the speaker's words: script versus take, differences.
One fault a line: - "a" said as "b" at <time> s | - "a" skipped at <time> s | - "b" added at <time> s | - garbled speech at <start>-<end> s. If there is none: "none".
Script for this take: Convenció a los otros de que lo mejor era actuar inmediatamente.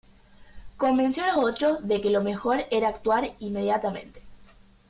none